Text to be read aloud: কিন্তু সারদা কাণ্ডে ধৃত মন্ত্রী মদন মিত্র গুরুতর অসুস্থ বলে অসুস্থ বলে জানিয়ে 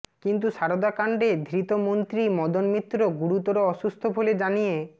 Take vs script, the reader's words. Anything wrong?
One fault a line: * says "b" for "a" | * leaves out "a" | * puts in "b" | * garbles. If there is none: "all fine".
* leaves out "অসুস্থ বলে"